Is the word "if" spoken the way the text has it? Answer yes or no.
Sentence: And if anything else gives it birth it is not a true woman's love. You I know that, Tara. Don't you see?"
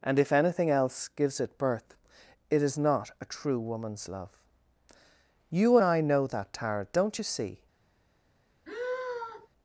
yes